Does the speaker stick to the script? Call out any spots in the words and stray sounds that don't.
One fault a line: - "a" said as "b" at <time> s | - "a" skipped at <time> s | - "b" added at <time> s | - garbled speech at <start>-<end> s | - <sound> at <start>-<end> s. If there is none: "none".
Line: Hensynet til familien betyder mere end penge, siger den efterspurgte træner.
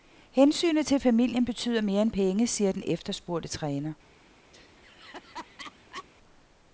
- laugh at 4.5-6.1 s